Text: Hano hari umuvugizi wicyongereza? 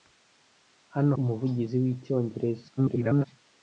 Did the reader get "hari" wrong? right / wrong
wrong